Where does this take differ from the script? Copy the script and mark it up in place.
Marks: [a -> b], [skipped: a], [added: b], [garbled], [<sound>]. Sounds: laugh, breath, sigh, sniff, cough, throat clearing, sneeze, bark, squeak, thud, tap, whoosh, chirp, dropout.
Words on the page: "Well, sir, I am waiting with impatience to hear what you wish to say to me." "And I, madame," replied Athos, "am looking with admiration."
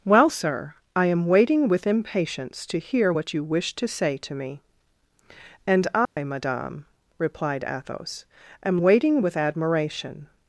"Well, sir, I am waiting with impatience to hear what you wish to say to me." "And I, [dropout] madame," replied Athos, "am [looking -> waiting] with admiration."